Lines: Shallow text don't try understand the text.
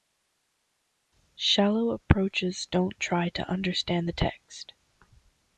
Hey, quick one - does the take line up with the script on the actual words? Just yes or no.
no